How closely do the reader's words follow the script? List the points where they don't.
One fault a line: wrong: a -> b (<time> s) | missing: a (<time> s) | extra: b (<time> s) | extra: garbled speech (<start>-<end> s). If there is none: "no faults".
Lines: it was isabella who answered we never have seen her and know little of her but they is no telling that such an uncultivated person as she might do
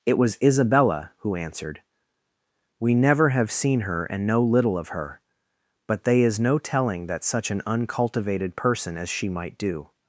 no faults